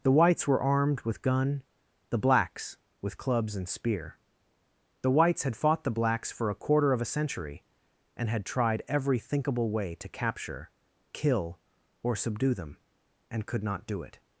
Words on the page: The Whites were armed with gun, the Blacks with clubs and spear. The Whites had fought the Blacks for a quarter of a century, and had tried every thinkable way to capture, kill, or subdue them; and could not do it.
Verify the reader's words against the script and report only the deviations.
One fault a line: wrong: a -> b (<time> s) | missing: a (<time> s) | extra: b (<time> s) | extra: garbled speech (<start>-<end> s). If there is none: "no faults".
no faults